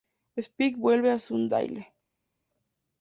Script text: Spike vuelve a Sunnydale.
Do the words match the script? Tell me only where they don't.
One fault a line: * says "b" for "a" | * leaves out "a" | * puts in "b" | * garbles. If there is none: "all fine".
all fine